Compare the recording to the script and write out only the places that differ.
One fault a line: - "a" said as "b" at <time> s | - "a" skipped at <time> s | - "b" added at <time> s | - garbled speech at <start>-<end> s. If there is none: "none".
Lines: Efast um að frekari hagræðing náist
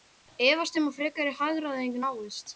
none